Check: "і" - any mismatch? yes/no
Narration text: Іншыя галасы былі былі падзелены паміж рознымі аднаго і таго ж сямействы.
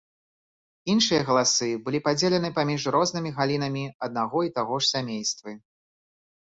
no